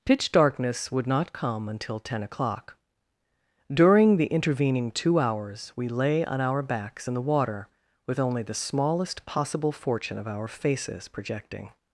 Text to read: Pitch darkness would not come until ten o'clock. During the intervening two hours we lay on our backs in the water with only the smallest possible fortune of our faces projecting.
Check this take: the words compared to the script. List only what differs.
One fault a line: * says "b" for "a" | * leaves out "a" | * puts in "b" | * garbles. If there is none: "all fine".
all fine